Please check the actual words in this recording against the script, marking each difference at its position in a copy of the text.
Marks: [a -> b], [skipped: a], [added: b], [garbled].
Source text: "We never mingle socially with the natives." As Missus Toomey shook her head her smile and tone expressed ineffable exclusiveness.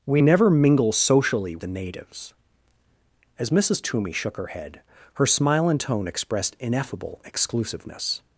"We never mingle socially [skipped: with] the natives." As Missus Toomey shook her head her smile and tone expressed ineffable exclusiveness.